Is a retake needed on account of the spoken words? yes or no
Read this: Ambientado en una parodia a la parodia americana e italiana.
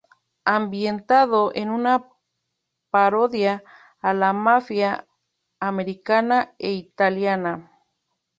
yes